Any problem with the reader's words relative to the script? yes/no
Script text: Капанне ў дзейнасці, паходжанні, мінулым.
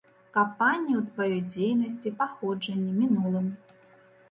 yes